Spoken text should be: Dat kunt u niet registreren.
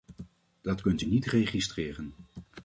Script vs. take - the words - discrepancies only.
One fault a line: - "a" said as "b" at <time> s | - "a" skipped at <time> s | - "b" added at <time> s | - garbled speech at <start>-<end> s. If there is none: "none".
none